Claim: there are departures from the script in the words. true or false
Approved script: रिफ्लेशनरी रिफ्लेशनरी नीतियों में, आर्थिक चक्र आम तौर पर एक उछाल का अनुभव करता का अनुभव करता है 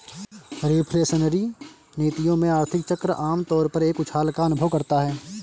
true